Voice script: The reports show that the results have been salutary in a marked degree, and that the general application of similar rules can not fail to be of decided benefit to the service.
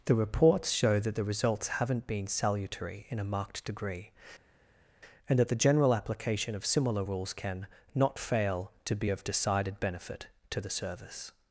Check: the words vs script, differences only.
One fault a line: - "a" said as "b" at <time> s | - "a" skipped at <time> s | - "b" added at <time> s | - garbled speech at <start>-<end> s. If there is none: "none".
- "have" said as "haven't" at 1.7 s